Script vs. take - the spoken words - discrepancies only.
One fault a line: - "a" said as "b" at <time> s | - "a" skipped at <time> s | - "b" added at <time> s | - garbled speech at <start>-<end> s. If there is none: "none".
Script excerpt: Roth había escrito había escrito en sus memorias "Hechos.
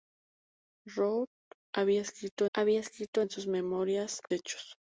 none